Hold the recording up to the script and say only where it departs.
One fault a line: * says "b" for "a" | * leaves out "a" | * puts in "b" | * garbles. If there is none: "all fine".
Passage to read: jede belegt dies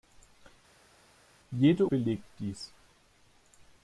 all fine